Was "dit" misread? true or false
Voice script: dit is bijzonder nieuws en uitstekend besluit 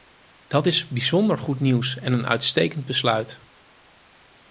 true